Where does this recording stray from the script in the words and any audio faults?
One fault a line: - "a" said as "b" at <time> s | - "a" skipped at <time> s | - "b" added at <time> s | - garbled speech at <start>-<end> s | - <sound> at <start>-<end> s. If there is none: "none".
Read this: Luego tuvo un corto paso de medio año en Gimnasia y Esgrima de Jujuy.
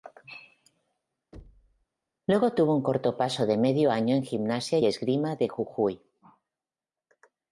- thud at 1.3-1.9 s
- "y" skipped at 4.8 s